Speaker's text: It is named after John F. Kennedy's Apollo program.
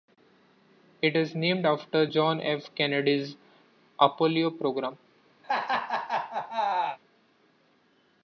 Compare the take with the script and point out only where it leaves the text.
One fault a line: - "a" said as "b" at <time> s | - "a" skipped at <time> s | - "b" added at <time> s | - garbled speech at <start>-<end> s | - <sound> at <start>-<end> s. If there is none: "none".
- laugh at 5.4-7.0 s